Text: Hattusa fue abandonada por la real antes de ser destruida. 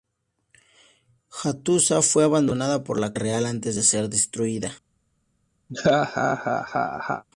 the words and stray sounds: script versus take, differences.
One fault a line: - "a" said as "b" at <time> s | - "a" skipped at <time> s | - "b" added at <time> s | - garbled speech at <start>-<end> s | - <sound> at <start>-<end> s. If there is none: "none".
- laugh at 5.7-7.2 s